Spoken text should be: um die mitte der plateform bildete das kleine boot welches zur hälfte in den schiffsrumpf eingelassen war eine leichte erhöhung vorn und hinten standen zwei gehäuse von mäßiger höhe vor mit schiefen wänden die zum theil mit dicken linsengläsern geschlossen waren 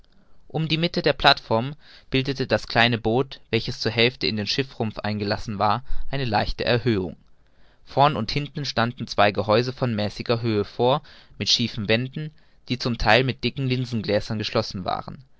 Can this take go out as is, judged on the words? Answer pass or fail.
pass